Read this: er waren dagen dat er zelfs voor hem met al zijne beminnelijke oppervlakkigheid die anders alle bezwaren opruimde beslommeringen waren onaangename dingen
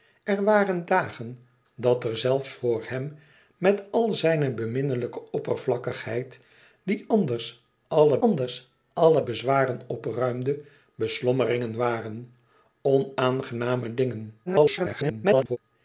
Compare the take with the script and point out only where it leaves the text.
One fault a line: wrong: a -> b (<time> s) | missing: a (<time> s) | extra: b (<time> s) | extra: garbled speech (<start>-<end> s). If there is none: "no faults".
extra: anders alle (8.2 s)
extra: garbled speech (14.5-15.6 s)